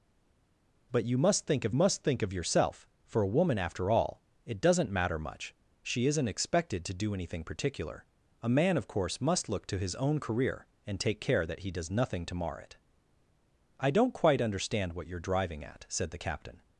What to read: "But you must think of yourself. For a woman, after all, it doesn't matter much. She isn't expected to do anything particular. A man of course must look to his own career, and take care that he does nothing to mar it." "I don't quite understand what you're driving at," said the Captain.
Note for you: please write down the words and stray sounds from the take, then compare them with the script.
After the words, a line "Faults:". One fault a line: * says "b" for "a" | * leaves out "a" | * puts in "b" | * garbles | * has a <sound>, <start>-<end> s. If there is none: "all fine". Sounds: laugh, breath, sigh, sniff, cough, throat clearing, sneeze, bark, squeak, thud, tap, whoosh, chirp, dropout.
"But you must think of must think of yourself. For a woman, after all, it doesn't matter much. She isn't expected to do anything particular. A man of course must look to his own career, and take care that he does nothing to mar it." "I don't quite understand what you're driving at," said the Captain.
Faults:
* puts in "must think of"